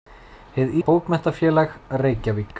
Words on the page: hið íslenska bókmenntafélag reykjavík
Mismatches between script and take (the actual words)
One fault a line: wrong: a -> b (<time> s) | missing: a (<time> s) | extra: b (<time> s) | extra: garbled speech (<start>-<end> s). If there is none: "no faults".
missing: íslenska (0.7 s)